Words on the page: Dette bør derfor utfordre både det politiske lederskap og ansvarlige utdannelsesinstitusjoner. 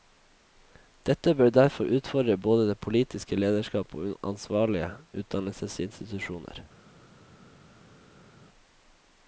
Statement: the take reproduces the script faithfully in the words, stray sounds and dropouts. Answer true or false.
true